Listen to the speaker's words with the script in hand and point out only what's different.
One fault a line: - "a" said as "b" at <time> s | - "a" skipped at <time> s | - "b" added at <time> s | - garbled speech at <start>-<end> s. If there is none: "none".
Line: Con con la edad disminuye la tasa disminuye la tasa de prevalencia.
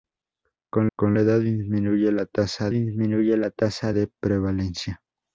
none